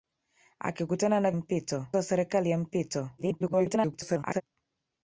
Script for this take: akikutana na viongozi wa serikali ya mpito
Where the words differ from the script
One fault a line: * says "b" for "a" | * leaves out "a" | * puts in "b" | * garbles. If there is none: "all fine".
* says "mpito" for "viongozi"
* garbles